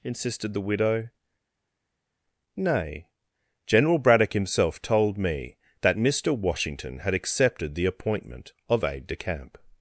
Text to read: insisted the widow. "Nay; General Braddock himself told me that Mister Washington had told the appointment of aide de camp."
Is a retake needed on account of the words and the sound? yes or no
yes